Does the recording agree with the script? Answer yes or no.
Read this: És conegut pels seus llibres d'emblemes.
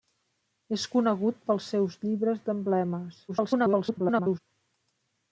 no